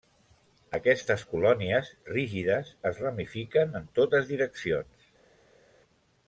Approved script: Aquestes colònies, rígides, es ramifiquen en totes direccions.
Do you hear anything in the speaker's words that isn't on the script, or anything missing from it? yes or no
no